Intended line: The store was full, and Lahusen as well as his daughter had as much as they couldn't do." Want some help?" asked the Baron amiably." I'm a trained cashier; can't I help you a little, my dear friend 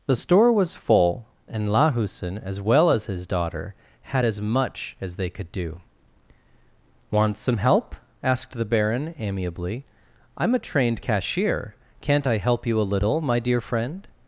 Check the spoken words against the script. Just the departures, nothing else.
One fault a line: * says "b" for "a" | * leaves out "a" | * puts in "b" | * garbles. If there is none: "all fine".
* says "could" for "couldn't"